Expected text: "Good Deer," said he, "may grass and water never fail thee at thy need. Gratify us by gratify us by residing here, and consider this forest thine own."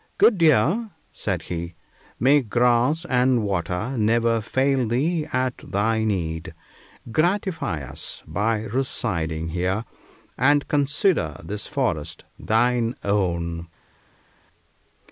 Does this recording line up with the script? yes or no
no